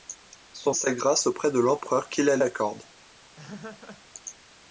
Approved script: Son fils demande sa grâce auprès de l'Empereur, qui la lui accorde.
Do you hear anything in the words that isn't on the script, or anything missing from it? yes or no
yes